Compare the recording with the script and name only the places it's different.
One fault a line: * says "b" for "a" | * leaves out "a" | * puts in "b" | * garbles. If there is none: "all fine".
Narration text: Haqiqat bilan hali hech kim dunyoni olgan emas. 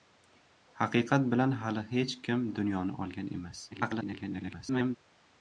* garbles